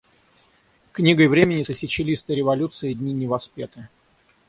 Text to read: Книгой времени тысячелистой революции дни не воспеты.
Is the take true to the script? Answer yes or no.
yes